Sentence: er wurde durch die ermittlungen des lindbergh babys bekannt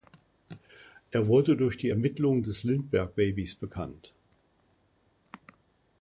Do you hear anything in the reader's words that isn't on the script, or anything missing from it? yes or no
no